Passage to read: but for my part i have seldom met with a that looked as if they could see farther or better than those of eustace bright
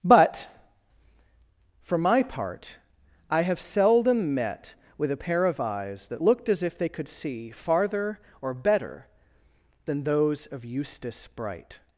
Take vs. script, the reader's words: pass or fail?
fail